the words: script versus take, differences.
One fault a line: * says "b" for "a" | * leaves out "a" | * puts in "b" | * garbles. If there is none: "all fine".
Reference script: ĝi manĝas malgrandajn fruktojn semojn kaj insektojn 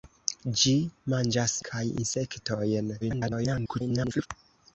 * leaves out "malgrandajn fruktojn semojn"
* garbles